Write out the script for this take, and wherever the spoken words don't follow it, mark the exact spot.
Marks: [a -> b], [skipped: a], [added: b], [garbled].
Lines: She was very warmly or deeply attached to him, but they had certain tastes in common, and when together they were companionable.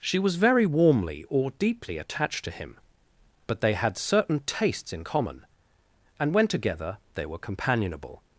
She was very warmly or deeply attached to him, but they had certain tastes in common, and when together they were companionable.